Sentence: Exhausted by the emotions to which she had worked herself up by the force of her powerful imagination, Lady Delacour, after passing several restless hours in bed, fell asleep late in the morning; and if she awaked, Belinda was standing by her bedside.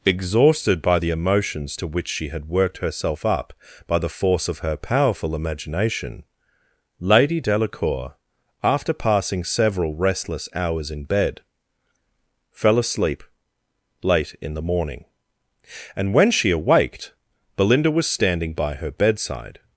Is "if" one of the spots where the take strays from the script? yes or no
yes